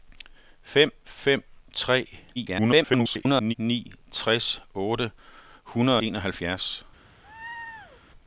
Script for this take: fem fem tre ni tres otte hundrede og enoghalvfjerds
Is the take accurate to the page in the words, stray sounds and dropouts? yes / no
no